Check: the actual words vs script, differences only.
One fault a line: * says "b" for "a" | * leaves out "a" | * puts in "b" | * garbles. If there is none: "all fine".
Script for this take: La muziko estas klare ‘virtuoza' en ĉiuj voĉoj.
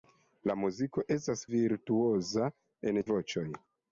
* leaves out "klare"
* leaves out "ĉiuj"